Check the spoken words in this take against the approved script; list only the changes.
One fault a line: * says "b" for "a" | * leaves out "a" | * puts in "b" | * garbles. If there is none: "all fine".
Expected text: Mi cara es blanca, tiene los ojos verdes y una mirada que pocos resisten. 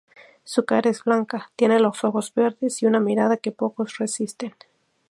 * says "Su" for "Mi"